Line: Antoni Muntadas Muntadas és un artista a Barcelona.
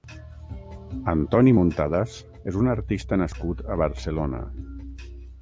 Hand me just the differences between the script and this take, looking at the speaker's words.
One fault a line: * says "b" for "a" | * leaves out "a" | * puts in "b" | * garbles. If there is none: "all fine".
* leaves out "Muntadas"
* puts in "nascut"